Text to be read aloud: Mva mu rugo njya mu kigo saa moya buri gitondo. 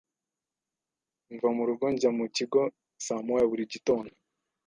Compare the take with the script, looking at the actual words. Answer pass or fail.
pass